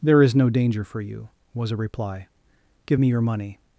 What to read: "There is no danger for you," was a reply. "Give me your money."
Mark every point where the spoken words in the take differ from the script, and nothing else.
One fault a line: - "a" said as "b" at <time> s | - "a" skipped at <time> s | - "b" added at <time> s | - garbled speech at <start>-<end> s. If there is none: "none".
none